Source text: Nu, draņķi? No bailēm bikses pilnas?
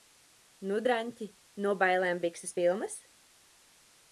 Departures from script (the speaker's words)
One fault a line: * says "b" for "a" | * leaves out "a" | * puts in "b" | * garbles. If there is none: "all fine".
all fine